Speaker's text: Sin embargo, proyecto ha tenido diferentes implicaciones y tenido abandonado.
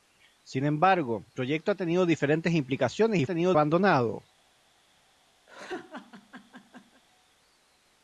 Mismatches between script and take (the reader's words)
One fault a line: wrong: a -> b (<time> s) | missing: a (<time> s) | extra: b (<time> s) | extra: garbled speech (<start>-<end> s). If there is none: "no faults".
no faults